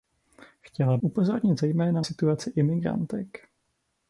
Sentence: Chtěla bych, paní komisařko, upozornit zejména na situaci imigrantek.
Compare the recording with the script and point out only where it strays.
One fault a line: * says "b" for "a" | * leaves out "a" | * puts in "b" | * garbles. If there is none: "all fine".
* leaves out "bych paní komisařko"
* leaves out "na"